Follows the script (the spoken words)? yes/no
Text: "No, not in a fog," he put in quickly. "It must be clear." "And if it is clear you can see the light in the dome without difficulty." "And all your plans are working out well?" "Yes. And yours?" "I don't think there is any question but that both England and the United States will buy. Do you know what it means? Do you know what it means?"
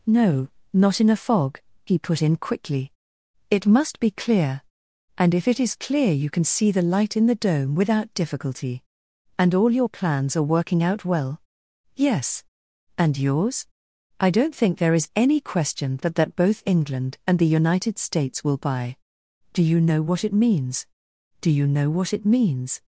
no